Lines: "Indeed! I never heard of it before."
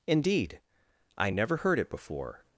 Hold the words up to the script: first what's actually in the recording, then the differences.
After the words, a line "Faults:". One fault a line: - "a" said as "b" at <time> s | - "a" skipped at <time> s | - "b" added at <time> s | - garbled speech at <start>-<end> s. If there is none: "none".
"Indeed! I never heard it before."
Faults:
- "of" skipped at 1.8 s